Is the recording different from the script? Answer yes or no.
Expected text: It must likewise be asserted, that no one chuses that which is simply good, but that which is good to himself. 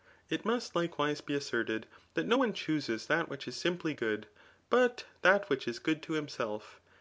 no